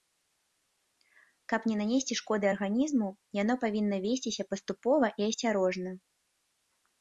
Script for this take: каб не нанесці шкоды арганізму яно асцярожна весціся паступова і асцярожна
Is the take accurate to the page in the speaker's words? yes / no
no